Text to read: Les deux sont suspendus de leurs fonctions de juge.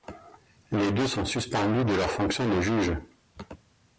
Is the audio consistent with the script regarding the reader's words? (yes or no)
yes